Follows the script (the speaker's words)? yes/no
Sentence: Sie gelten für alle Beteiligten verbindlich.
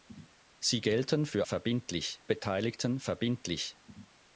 no